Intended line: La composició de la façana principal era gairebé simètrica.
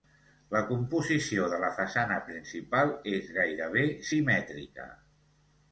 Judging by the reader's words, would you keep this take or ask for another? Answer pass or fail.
fail